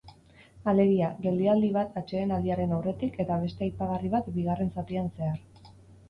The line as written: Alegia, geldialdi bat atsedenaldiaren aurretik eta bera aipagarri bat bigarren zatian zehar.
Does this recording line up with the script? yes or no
no